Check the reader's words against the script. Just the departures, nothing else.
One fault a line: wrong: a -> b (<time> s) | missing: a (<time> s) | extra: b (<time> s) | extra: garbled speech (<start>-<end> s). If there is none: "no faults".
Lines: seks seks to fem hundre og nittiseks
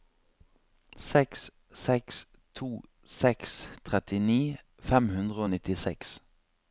extra: seks trettini (3.2 s)